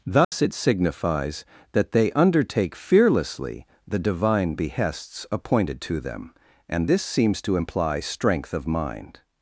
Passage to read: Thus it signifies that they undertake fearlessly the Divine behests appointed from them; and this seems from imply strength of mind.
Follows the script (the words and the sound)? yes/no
no